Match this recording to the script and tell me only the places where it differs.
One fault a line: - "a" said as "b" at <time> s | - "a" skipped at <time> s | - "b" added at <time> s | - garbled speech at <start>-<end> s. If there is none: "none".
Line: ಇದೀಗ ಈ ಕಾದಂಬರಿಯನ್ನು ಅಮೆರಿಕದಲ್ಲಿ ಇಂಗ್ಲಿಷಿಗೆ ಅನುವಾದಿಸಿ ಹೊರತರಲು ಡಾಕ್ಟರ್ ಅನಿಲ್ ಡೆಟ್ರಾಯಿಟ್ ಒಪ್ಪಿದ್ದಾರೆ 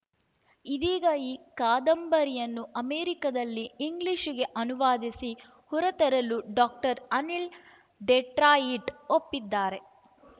none